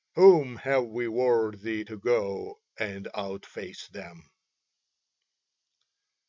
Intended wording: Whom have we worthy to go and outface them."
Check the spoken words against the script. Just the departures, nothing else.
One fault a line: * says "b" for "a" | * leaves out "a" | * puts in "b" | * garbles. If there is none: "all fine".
all fine